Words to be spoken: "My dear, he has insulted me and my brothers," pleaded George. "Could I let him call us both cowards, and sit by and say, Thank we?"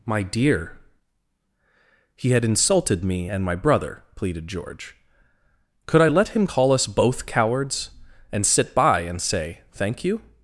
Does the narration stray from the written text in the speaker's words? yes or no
yes